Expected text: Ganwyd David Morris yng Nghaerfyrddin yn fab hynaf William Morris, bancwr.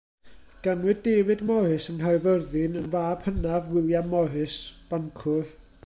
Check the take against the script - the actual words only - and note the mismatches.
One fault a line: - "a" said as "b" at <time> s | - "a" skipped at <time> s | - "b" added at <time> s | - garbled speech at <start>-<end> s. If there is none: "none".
none